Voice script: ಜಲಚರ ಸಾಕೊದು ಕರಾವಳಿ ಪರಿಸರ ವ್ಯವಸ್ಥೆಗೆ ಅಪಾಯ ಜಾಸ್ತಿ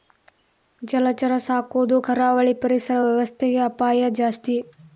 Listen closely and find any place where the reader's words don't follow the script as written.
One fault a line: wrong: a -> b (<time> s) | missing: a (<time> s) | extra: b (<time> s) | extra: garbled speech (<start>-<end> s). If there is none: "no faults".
no faults